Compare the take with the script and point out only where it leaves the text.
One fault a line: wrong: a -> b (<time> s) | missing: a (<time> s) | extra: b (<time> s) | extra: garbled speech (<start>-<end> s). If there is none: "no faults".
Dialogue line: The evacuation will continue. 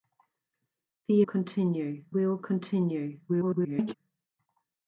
wrong: evacuation -> continue (1.2 s)
extra: garbled speech (3.3-3.9 s)